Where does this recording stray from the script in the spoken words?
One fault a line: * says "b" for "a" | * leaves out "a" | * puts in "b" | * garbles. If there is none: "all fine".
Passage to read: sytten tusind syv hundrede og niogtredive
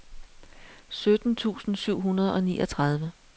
all fine